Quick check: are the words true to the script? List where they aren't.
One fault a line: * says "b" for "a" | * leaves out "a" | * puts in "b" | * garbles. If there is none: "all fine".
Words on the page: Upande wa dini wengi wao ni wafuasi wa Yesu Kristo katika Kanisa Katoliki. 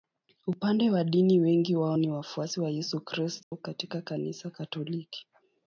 all fine